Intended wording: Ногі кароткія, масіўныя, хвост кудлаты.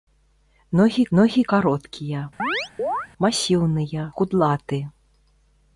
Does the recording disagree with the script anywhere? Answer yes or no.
yes